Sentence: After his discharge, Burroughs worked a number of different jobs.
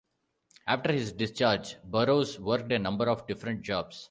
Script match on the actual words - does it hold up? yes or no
yes